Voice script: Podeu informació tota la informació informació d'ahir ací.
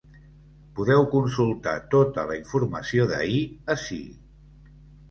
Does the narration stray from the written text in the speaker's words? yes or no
yes